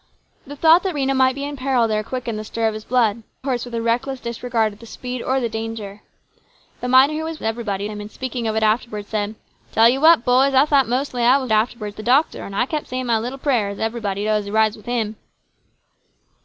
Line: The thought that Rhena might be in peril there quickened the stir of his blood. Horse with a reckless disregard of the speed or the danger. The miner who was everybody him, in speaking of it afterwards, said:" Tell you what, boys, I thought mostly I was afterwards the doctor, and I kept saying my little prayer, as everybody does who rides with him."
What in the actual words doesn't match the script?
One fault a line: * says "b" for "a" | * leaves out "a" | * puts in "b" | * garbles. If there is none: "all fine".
all fine